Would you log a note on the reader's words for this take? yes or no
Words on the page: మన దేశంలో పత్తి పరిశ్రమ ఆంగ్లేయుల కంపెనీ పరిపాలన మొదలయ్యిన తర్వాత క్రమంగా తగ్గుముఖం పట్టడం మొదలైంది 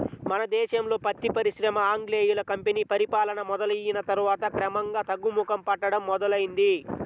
no